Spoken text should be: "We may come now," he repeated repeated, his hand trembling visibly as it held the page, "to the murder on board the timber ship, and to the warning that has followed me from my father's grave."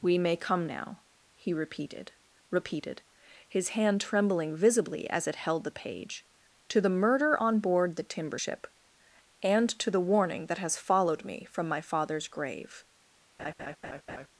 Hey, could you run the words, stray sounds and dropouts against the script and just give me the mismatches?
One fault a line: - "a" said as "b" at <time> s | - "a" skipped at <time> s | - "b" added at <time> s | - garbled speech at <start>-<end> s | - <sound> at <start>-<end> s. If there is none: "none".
- laugh at 13.4-14.3 s